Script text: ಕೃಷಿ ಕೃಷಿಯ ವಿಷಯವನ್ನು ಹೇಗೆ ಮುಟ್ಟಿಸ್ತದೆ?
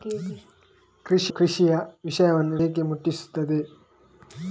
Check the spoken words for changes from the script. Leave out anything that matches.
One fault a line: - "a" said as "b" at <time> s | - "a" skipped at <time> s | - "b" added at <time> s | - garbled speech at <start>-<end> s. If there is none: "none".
none